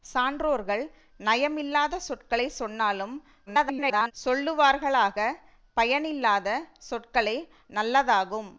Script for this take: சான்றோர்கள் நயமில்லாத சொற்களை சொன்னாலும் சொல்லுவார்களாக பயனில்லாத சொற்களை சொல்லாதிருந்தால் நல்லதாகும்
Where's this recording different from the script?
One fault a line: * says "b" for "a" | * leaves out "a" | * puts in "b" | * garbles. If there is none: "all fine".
* garbles
* leaves out "சொல்லாதிருந்தால்"